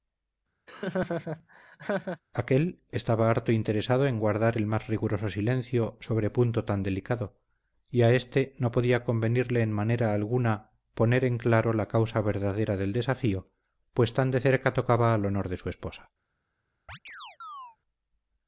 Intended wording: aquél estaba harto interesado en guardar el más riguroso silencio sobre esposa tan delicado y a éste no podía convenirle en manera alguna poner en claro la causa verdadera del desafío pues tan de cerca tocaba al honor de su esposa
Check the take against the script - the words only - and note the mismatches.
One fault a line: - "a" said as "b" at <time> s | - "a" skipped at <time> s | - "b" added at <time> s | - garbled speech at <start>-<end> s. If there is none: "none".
- "esposa" said as "punto" at 6.3 s